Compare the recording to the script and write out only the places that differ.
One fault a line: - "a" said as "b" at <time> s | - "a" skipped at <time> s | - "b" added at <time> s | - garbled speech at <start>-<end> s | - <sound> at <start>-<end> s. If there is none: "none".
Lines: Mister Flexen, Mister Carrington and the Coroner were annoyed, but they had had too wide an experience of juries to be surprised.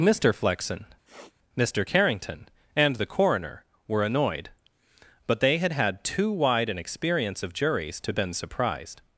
- sniff at 1.1-1.3 s
- "be" said as "been" at 8.1 s